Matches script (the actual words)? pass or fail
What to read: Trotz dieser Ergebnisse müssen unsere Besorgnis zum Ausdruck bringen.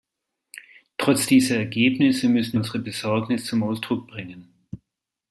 pass